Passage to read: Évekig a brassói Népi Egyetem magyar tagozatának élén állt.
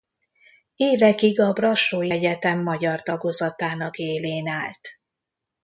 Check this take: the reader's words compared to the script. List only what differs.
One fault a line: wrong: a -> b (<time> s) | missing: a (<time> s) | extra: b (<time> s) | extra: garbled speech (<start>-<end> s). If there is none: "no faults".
missing: Népi (2.1 s)